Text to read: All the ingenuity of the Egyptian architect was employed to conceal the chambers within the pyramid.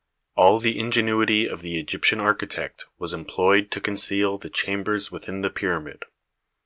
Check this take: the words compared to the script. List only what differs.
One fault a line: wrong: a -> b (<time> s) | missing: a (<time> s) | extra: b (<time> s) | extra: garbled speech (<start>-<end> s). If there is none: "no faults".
no faults